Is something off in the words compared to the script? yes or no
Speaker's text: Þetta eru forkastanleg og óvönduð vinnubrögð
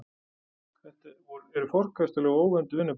no